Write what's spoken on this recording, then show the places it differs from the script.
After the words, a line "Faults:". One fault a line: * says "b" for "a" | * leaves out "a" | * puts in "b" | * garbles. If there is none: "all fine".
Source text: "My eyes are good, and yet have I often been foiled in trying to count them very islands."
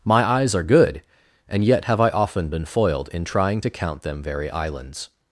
"My eyes are good, and yet have I often been foiled in trying to count them very islands."
Faults:
all fine